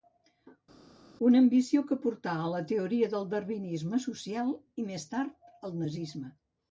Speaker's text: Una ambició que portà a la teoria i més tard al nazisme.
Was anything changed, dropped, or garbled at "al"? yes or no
no